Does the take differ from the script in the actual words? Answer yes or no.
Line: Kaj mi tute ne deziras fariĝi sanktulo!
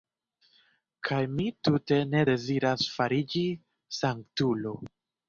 no